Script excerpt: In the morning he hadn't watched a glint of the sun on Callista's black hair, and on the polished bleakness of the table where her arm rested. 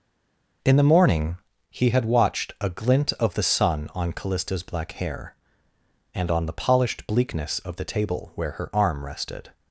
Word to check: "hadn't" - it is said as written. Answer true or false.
false